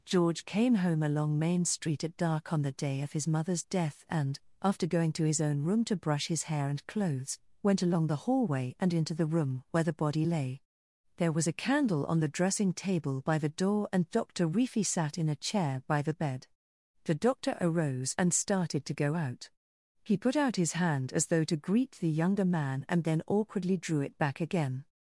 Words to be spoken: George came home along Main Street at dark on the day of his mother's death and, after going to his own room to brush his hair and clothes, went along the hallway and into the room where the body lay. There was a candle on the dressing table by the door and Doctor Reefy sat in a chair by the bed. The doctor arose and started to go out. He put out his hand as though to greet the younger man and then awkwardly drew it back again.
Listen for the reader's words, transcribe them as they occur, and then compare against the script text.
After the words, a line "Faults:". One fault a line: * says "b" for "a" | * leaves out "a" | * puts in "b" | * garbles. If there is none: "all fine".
George came home along Main Street at dark on the day of his mother's death and, after going to his own room to brush his hair and clothes, went along the hallway and into the room where the body lay. There was a candle on the dressing table by the door and Doctor Reefy sat in a chair by the bed. The doctor arose and started to go out. He put out his hand as though to greet the younger man and then awkwardly drew it back again.
Faults:
all fine